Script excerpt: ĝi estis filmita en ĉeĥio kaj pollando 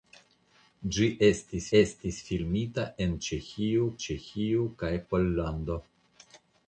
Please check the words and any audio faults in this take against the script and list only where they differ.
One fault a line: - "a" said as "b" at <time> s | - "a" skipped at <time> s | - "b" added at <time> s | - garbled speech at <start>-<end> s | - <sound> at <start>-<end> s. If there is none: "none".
- "estis" added at 1.8 s
- "ĉeĥio" added at 4.1 s